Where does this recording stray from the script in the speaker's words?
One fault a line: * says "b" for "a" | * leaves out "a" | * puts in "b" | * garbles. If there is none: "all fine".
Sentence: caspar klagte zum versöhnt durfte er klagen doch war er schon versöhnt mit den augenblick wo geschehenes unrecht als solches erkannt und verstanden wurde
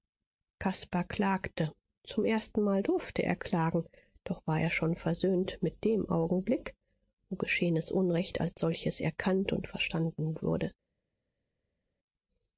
* says "erstenmal" for "versöhnt"
* says "dem" for "den"